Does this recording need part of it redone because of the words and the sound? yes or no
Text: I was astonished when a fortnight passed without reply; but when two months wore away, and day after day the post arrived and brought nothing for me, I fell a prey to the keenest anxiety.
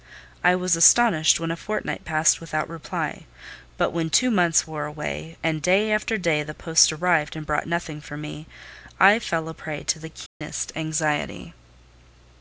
yes